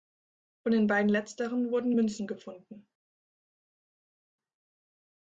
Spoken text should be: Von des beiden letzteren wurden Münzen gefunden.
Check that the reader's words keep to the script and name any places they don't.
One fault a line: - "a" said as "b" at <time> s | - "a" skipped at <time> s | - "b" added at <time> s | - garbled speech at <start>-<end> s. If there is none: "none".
- "des" said as "den" at 0.7 s